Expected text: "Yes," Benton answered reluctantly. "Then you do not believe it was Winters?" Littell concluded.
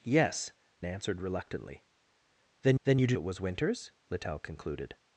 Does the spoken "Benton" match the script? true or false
false